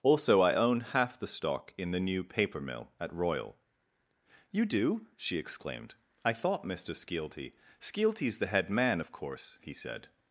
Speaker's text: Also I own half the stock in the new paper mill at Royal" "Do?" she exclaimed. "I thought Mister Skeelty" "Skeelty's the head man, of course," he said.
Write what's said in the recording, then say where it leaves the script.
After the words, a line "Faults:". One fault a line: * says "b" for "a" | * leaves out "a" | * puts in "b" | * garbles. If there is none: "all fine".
Also I own half the stock in the new paper mill at Royal" "You do?" she exclaimed. "I thought Mister Skeelty" "Skeelty's the head man, of course," he said.
Faults:
* puts in "You"